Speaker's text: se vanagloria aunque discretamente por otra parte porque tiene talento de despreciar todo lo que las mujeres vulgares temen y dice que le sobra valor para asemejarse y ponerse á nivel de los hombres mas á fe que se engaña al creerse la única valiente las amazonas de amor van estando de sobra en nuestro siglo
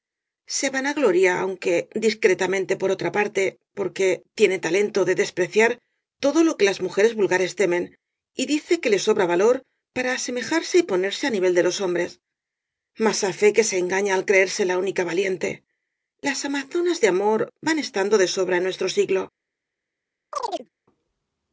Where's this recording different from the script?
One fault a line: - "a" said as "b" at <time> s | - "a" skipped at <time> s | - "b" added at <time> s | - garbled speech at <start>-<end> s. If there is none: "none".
none